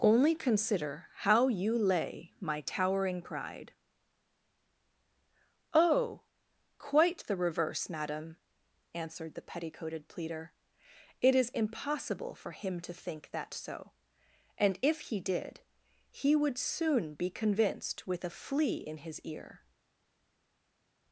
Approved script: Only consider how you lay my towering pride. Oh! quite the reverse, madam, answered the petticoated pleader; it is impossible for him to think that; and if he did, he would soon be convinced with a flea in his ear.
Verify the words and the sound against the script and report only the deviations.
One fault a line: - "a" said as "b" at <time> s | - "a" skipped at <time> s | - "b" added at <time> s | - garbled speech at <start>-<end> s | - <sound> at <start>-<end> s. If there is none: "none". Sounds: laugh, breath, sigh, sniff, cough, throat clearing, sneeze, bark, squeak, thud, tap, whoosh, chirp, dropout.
- "so" added at 13.5 s